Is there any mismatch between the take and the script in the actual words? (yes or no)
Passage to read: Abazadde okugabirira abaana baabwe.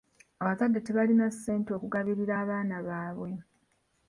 yes